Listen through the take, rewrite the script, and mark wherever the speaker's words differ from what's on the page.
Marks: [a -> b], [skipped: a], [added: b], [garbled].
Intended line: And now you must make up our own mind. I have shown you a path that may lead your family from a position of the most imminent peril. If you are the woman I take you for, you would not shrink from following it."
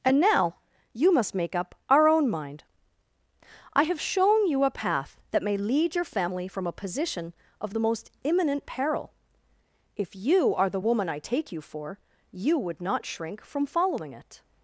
And now you must make up our own mind. I have shown you a path that may lead your family from a position of the most imminent peril. If you are the woman I take you for, you would not shrink from following it."